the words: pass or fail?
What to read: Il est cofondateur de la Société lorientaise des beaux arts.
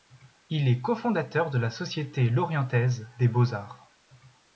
pass